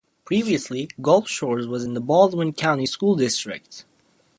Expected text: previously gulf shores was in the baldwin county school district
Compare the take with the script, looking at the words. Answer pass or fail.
pass